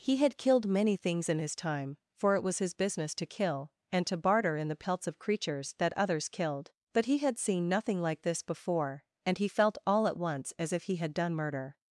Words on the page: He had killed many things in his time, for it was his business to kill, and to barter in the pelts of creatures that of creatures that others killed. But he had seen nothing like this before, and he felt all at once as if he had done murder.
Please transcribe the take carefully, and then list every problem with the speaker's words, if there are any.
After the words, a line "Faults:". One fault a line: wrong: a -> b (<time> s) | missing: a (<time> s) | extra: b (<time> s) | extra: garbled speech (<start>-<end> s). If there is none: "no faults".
He had killed many things in his time, for it was his business to kill, and to barter in the pelts of creatures that others killed. But he had seen nothing like this before, and he felt all at once as if he had done murder.
Faults:
missing: of creatures that (5.9 s)